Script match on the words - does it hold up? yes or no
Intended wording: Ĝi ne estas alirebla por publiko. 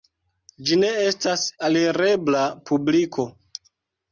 no